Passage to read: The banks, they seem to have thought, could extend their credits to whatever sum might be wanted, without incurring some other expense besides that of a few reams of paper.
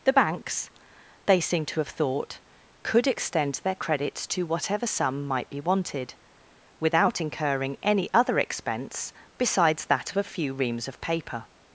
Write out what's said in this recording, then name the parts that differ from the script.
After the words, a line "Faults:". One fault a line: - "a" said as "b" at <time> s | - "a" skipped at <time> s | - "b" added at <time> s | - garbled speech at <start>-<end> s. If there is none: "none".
The banks, they seem to have thought, could extend their credits to whatever sum might be wanted, without incurring any other expense besides that of a few reams of paper.
Faults:
- "some" said as "any" at 7.8 s